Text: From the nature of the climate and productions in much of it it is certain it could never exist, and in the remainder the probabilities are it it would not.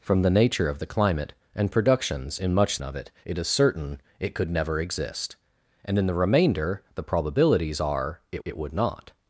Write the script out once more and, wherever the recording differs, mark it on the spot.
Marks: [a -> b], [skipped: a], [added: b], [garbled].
From the nature of the climate and productions in much of it it is certain it could never exist, and in the remainder the probabilities are it it would not.